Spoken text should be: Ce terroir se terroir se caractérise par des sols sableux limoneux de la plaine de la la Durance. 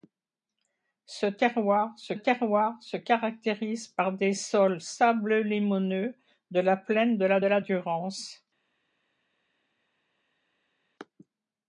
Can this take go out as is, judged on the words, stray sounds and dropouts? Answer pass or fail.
pass